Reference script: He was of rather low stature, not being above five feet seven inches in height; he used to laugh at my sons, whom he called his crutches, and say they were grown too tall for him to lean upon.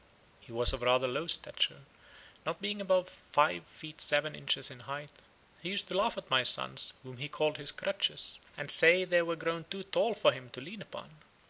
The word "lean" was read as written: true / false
true